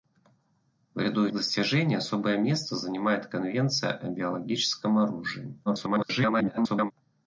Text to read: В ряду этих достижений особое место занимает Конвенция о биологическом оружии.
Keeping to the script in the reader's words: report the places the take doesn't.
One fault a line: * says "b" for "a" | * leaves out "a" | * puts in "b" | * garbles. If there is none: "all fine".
* leaves out "этих"
* garbles